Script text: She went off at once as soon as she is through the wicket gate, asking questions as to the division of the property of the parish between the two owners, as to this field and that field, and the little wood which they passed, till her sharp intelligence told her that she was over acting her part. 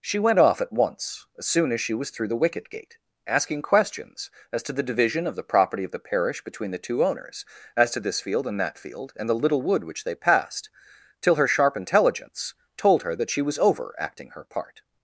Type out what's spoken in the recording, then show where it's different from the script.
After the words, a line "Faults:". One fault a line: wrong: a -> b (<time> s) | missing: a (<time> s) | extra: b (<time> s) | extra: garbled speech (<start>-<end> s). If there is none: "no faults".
She went off at once as soon as she was through the wicket gate, asking questions as to the division of the property of the parish between the two owners, as to this field and that field, and the little wood which they passed, till her sharp intelligence told her that she was over acting her part.
Faults:
wrong: is -> was (1.9 s)